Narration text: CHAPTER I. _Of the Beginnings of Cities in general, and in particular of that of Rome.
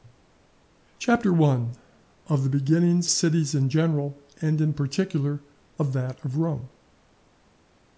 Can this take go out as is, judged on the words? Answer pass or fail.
fail